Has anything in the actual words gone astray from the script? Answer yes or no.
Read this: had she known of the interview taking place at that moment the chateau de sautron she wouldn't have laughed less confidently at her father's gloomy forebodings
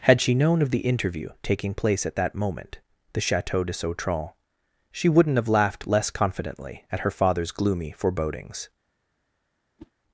no